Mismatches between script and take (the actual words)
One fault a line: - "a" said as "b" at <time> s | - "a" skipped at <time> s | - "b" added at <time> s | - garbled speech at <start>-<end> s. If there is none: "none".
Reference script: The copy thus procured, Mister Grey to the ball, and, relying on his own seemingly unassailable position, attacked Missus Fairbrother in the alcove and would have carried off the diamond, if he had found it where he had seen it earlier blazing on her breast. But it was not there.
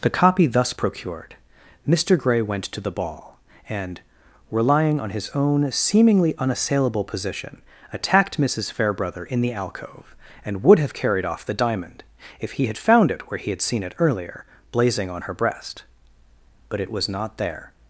- "went" added at 2.4 s